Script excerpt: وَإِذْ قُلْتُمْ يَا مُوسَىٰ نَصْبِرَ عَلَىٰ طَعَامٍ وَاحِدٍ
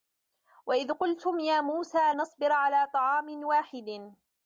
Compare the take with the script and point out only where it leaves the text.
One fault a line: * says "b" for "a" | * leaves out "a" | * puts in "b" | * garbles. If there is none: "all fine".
all fine